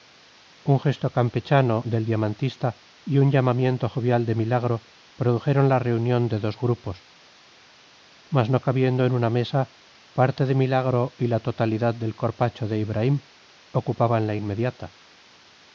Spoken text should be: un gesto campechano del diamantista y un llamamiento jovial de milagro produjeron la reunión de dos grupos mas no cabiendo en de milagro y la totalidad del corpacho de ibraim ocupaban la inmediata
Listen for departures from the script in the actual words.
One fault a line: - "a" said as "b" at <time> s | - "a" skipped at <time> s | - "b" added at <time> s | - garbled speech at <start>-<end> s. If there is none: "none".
- "una mesa parte" added at 9.1 s